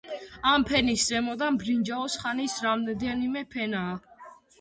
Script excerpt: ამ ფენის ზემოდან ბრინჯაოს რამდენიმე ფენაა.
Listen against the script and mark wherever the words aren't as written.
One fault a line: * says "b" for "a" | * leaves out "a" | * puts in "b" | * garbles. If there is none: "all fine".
* puts in "ხანის"